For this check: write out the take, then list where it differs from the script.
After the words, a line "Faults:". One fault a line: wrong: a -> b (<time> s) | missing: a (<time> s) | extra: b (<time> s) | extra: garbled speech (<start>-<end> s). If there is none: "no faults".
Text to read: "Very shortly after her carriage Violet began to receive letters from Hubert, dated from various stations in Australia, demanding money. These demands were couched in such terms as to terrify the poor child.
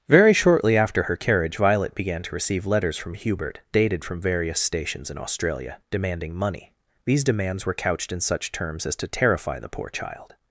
"Very shortly after her carriage Violet began to receive letters from Hubert, dated from various stations in Australia, demanding money. These demands were couched in such terms as to terrify the poor child.
Faults:
no faults